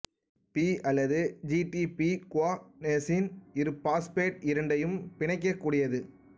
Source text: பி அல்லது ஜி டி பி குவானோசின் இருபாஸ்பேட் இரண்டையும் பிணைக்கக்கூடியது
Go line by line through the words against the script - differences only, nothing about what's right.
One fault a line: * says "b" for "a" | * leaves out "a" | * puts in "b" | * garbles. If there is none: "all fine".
all fine